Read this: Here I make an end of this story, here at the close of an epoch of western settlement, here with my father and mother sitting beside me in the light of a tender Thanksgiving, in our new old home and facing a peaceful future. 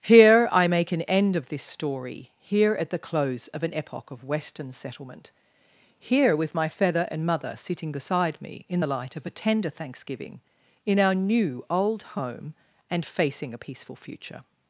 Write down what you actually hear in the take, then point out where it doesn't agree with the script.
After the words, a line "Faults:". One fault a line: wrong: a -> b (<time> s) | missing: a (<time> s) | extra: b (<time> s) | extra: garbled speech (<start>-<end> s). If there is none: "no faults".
Here I make an end of this story, here at the close of an epoch of western settlement, here with my feather and mother sitting beside me in the light of a tender Thanksgiving, in our new old home and facing a peaceful future.
Faults:
wrong: father -> feather (6.7 s)